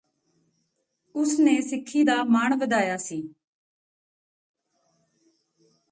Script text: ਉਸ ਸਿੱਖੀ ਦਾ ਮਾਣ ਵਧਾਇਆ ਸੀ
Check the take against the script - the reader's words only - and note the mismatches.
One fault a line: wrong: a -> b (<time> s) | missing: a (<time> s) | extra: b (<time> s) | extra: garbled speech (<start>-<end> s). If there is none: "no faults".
extra: ਨੇ (1.4 s)